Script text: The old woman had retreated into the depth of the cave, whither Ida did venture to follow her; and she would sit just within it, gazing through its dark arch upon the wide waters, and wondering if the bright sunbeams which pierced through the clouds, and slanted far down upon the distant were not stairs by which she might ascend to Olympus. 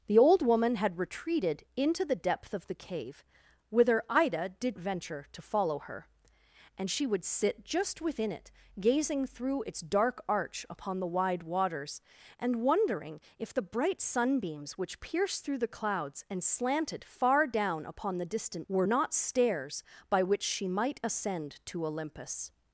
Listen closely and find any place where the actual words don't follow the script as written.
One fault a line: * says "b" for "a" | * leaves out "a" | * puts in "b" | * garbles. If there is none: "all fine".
all fine